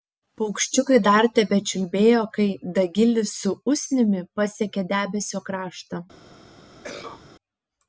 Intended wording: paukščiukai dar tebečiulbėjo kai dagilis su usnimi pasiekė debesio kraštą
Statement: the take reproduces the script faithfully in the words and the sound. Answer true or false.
false